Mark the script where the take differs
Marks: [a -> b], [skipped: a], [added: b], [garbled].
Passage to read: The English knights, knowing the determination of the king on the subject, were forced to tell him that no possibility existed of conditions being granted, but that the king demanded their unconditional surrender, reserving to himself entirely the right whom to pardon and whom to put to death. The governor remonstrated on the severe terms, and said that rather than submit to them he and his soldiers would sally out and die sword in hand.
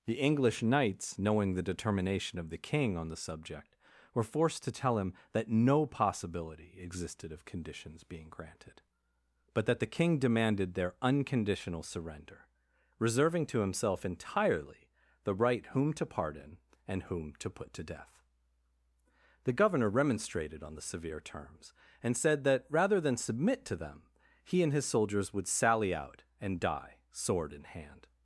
The English knights, knowing the determination of the king on the subject, were forced to tell him that no possibility existed of conditions being granted, but that the king demanded their unconditional surrender, reserving to himself entirely the right whom to pardon and whom to put to death. The governor remonstrated on the severe terms, and said that rather than submit to them he and his soldiers would sally out and die sword in hand.